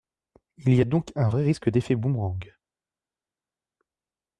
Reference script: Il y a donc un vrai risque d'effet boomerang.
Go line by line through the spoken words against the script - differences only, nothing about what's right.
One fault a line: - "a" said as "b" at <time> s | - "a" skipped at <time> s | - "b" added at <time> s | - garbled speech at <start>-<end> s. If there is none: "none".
none